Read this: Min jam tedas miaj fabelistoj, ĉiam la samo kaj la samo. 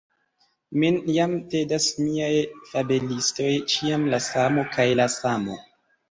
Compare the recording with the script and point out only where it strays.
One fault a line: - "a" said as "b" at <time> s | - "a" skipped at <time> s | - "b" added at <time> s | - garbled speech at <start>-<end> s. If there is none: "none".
none